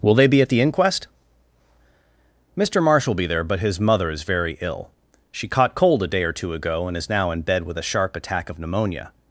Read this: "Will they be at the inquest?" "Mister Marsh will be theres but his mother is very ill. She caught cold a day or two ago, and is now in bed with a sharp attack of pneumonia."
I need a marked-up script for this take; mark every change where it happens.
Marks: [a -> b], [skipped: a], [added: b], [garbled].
"Will they be at the inquest?" "Mister Marsh will be [theres -> there] but his mother is very ill. She caught cold a day or two ago, and is now in bed with a sharp attack of pneumonia."